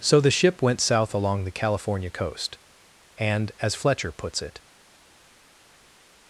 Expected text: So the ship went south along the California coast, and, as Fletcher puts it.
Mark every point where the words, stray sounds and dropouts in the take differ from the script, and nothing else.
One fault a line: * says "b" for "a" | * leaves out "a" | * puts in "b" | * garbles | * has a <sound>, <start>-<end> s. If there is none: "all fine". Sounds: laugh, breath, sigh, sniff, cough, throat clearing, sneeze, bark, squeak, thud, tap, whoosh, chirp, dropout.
all fine